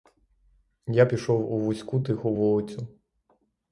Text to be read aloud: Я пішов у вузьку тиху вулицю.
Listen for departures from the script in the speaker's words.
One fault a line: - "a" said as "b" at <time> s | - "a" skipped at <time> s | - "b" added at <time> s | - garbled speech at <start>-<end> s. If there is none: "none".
none